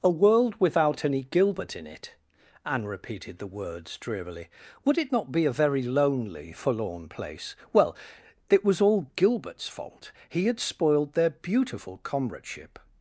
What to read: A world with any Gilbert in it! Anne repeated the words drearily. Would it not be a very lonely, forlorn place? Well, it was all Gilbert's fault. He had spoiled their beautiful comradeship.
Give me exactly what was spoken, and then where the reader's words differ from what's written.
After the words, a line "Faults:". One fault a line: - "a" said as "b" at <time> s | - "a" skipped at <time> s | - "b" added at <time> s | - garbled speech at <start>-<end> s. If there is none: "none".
A world without any Gilbert in it! Anne repeated the words drearily. Would it not be a very lonely, forlorn place? Well, it was all Gilbert's fault. He had spoiled their beautiful comradeship.
Faults:
- "with" said as "without" at 0.6 s